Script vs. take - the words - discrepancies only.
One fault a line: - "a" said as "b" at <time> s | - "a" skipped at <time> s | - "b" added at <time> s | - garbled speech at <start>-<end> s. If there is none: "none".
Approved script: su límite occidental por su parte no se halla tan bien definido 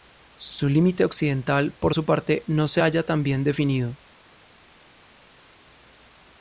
none